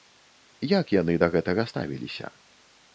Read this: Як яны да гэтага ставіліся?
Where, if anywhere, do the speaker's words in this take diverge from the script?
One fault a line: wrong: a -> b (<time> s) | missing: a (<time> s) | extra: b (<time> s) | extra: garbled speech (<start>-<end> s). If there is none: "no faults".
no faults